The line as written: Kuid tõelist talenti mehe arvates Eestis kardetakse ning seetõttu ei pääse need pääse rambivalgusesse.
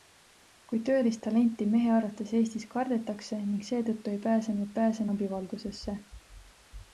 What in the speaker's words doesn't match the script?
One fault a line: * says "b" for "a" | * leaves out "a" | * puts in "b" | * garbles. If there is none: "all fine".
all fine